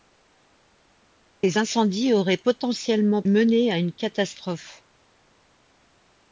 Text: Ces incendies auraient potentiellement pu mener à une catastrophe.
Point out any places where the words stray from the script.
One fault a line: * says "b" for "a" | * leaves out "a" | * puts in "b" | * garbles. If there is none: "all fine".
* leaves out "pu"